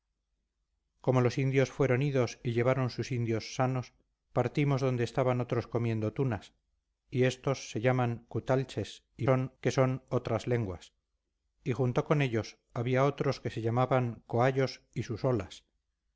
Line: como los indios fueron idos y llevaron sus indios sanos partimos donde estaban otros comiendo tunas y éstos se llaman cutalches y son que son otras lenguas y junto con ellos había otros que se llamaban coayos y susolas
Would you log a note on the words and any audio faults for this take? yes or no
no